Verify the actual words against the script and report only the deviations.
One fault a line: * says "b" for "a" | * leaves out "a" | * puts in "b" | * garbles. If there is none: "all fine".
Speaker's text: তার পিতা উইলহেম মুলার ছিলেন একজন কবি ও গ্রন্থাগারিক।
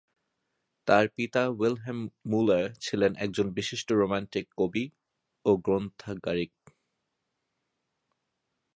* puts in "বিশিষ্ট রোমান্টিক"